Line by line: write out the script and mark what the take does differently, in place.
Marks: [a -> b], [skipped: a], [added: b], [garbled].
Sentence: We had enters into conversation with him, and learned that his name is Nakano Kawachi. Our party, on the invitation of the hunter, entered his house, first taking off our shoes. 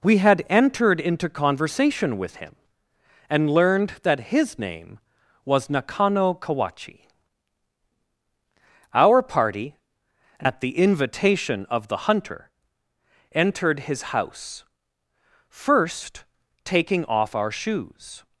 We had [enters -> entered] into conversation with him, and learned that his name [is -> was] Nakano Kawachi. Our party, [on -> at] the invitation of the hunter, entered his house, first taking off our shoes.